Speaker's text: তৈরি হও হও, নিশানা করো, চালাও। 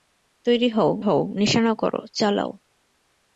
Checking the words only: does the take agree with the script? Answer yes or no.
yes